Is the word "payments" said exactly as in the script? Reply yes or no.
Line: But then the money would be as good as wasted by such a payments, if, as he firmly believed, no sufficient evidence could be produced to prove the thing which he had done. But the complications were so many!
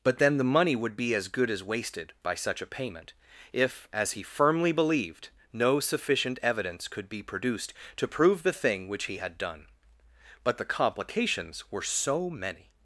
no